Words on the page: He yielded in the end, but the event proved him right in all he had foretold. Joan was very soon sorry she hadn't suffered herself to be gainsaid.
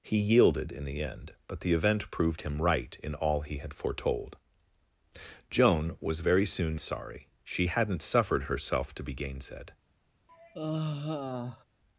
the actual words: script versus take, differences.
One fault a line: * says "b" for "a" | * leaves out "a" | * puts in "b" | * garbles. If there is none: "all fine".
all fine